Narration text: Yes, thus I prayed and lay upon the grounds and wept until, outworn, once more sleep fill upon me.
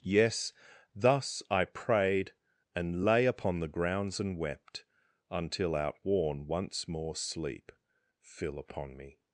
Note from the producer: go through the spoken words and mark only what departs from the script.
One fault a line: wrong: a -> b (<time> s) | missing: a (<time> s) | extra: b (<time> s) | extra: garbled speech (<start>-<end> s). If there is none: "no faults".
no faults